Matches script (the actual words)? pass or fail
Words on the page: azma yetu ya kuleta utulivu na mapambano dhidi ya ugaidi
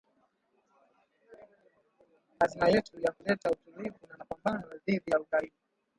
pass